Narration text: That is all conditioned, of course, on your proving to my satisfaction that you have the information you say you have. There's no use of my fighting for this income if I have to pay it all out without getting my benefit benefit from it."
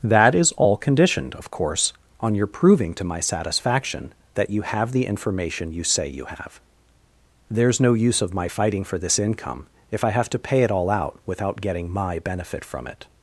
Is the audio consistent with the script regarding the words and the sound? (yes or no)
no